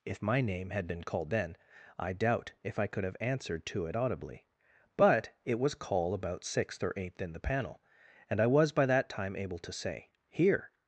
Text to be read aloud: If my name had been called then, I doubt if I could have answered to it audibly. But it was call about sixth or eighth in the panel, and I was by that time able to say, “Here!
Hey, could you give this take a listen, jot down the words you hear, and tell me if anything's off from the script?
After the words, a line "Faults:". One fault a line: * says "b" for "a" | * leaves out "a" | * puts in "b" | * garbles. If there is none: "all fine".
If my name had been called then, I doubt if I could have answered to it audibly. But it was call about sixth or eighth in the panel, and I was by that time able to say, “Here!
Faults:
all fine